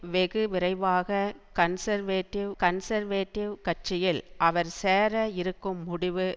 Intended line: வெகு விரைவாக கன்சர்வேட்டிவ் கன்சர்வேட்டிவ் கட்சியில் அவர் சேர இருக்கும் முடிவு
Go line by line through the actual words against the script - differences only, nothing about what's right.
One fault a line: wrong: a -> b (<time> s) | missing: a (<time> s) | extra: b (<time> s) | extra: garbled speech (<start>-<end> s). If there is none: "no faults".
no faults